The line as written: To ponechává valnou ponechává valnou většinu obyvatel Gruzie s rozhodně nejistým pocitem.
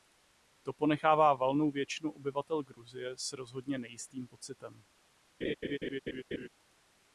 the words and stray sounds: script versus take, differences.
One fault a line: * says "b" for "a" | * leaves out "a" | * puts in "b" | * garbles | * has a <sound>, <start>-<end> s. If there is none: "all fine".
* leaves out "ponechává valnou"
* has a laugh, 5.4-6.5 s